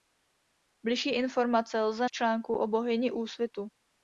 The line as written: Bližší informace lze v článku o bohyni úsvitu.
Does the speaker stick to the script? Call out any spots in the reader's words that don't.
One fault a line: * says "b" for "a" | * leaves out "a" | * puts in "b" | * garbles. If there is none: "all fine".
all fine